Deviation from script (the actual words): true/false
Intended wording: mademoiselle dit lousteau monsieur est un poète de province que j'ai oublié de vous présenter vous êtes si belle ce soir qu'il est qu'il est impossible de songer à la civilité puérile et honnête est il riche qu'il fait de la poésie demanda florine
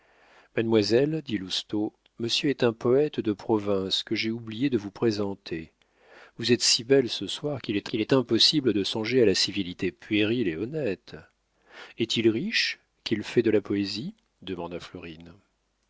false